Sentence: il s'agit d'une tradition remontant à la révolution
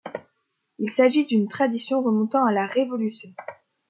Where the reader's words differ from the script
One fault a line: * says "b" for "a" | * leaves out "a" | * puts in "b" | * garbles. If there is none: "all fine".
all fine